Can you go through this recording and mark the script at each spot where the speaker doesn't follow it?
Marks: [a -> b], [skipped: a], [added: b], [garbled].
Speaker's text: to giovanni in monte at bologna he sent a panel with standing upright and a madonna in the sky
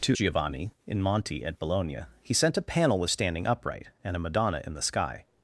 to giovanni in monte at bologna he sent a panel with standing upright and a madonna in the sky